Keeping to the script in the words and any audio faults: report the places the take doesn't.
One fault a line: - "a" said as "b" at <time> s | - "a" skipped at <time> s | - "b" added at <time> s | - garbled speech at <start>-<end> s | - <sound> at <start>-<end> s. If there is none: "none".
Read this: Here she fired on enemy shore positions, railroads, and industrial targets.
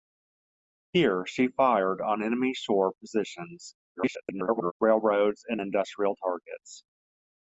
- garbled speech at 3.9-4.7 s